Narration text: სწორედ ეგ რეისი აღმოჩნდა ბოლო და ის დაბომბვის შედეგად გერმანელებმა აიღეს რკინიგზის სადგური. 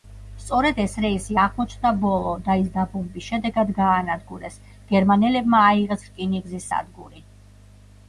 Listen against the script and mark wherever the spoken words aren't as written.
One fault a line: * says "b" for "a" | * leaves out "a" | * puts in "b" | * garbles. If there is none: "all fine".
* says "ეს" for "ეგ"
* puts in "გაანადგურეს"